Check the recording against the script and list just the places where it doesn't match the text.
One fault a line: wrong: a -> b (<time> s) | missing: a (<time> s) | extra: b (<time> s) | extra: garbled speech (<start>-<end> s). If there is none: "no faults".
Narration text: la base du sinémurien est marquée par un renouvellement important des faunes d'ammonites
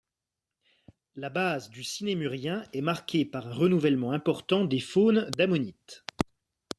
no faults